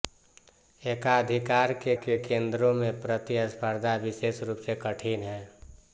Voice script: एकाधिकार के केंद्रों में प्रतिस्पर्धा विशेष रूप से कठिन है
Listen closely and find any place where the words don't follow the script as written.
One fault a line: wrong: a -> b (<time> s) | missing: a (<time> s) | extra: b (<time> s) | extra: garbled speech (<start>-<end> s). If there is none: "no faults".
extra: के (1.9 s)